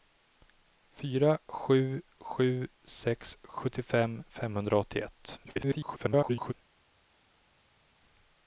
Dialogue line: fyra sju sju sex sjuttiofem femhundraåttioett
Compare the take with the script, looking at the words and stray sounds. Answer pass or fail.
fail